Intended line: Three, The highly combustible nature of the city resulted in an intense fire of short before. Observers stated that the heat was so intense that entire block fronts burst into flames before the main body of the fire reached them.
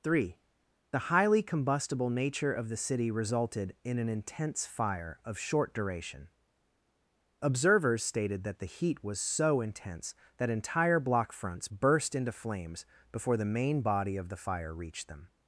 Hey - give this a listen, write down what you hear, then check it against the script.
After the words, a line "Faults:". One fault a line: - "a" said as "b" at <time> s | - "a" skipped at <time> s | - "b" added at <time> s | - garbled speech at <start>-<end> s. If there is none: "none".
Three, The highly combustible nature of the city resulted in an intense fire of short duration. Observers stated that the heat was so intense that entire block fronts burst into flames before the main body of the fire reached them.
Faults:
- "before" said as "duration" at 5.8 s